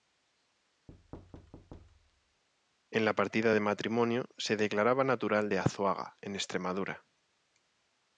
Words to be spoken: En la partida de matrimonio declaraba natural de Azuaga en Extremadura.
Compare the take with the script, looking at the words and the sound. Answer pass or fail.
fail